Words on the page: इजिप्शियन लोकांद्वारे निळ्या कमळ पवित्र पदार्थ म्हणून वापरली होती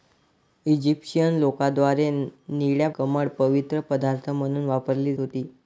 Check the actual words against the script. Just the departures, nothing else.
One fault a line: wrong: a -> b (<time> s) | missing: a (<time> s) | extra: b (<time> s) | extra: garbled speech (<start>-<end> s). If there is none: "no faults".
no faults